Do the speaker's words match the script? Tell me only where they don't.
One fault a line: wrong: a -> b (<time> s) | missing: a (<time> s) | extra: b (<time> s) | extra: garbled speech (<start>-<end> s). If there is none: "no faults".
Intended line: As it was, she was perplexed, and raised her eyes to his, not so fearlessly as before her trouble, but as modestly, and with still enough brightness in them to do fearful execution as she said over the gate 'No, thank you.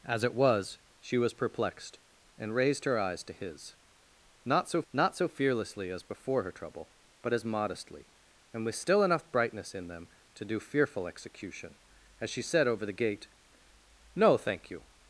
extra: not so (4.9 s)